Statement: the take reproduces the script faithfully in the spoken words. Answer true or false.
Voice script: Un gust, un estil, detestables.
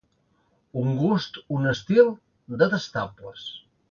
true